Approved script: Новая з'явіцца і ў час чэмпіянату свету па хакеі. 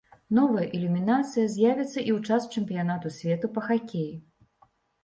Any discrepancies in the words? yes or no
yes